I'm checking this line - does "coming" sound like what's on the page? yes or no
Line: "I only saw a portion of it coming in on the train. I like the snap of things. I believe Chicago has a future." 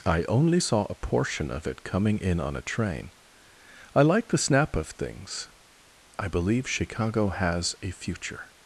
yes